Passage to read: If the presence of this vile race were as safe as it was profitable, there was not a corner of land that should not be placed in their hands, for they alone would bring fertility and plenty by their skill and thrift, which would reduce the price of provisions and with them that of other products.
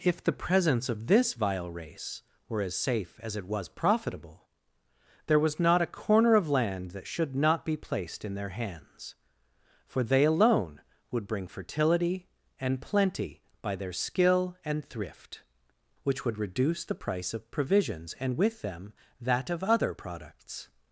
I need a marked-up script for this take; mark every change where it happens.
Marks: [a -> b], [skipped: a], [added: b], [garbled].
If the presence of this vile race were as safe as it was profitable, there was not a corner of land that should not be placed in their hands, for they alone would bring fertility and plenty by their skill and thrift, which would reduce the price of provisions and with them that of other products.